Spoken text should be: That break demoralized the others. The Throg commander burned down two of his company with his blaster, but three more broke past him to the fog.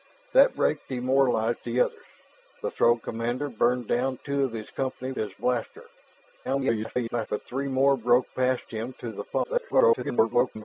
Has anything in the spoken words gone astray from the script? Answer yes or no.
yes